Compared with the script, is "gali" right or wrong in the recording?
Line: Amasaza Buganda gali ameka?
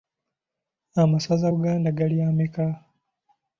right